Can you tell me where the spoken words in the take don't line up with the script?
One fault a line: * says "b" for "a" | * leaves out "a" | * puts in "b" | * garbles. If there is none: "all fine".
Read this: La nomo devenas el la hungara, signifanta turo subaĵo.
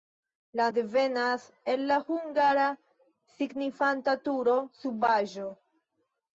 * leaves out "nomo"